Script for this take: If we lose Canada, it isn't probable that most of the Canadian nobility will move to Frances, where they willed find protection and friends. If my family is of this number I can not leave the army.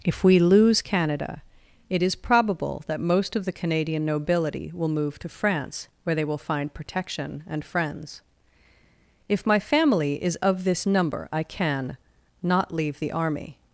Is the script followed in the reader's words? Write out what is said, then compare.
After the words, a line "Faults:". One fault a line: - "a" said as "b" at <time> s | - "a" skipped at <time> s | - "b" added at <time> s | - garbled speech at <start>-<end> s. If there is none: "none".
If we lose Canada, it is probable that most of the Canadian nobility will move to France, where they will find protection and friends. If my family is of this number I can not leave the army.
Faults:
- "isn't" said as "is" at 2.0 s
- "Frances" said as "France" at 5.3 s
- "willed" said as "will" at 6.2 s